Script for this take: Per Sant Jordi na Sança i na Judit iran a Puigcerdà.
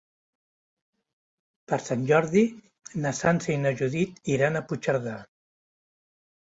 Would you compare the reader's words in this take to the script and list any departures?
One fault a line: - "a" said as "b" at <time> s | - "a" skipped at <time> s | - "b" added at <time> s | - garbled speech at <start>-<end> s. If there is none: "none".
none